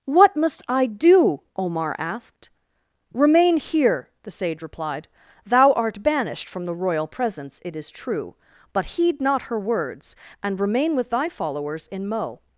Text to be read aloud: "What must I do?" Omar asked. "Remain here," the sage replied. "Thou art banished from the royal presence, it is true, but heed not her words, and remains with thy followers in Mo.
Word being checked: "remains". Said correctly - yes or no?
no